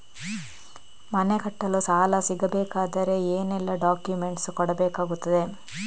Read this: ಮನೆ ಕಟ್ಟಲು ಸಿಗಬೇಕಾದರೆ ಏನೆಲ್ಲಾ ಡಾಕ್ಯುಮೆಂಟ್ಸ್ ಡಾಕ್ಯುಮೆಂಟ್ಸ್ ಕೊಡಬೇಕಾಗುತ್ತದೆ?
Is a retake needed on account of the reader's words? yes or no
yes